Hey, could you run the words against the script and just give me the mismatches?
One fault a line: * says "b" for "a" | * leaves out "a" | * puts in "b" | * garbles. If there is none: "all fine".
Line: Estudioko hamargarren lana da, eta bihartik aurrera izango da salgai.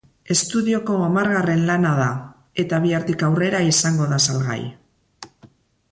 all fine